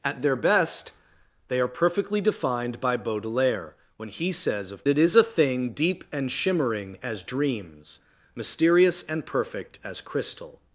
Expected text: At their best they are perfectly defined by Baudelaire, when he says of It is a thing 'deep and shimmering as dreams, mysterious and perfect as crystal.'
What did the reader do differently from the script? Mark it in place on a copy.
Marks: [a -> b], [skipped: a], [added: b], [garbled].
At their best they are perfectly defined by Baudelaire, when he says of It is a thing 'deep and shimmering as dreams, mysterious and perfect as crystal.'